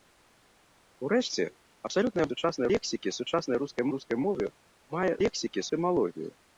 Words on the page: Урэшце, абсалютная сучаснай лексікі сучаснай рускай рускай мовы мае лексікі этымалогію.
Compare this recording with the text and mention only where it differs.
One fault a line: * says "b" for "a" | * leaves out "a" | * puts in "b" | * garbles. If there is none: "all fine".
all fine